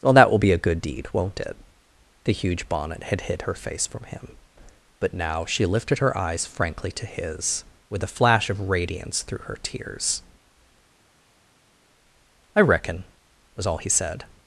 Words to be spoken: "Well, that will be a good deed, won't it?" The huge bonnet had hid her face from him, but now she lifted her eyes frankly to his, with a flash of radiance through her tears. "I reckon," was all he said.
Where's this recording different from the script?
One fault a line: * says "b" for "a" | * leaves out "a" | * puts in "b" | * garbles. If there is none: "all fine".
all fine